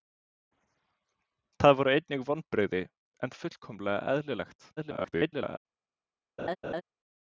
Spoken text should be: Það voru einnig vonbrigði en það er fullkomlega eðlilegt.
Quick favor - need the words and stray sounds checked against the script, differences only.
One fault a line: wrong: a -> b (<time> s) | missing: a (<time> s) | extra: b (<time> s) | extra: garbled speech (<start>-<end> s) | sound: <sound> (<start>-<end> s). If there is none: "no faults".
missing: það (3.3 s)
extra: garbled speech (4.8-5.6 s)
sound: laugh (6.4-6.8 s)